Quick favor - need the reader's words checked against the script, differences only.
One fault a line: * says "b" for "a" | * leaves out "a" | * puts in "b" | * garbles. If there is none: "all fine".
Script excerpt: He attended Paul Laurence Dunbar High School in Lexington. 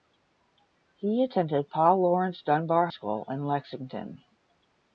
* leaves out "High"